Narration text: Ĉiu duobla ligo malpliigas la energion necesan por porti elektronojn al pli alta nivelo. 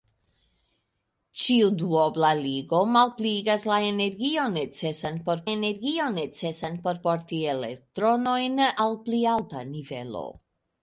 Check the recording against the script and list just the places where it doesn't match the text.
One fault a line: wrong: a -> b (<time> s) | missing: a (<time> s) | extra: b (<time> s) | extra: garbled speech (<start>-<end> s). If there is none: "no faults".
extra: energion necesan por (5.5 s)